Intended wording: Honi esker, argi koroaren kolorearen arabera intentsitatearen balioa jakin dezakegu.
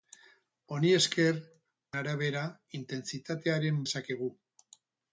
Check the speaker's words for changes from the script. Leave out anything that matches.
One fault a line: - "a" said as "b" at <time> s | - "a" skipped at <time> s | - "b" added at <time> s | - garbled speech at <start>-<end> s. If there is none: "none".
- "argi koroaren kolorearen" skipped at 1.4 s
- "balioa jakin" skipped at 3.8 s